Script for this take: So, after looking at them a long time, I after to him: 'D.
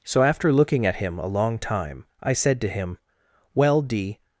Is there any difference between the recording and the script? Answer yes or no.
yes